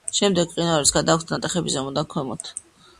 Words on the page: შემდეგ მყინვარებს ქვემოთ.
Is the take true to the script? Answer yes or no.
no